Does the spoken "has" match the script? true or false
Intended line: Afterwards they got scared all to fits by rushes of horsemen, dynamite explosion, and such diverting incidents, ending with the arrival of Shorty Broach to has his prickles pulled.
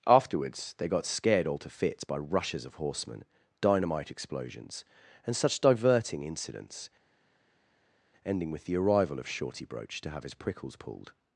false